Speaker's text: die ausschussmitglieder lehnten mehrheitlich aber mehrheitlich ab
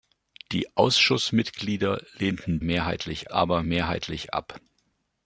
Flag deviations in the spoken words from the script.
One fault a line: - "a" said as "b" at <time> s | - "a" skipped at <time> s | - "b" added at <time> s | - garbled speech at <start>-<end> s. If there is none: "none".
none